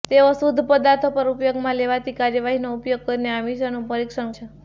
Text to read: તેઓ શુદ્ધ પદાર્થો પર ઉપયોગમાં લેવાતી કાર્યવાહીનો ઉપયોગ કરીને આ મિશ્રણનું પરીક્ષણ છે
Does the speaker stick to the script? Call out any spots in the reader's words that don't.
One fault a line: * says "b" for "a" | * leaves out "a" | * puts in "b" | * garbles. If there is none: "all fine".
all fine